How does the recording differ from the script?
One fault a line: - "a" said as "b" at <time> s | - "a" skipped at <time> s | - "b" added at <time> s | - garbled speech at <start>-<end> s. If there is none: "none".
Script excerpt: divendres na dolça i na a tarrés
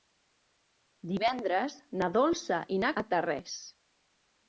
none